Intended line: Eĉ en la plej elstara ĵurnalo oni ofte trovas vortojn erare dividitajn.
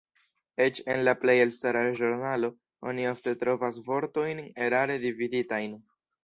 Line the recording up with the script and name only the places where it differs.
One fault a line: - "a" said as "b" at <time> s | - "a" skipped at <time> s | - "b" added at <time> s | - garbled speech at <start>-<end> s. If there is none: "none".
none